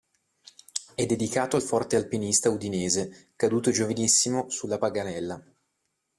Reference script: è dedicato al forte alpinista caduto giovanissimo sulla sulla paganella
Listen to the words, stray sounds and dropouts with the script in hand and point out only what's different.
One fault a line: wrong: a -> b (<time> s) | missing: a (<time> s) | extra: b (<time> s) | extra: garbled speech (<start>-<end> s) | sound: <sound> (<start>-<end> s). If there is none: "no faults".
extra: udinese (2.5 s)
missing: sulla (4.8 s)